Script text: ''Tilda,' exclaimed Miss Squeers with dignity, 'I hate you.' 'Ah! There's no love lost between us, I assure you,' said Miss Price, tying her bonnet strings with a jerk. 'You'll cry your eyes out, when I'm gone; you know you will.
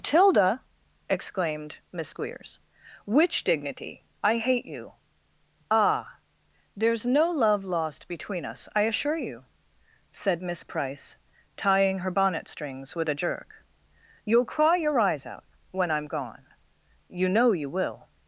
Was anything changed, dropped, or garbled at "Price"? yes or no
no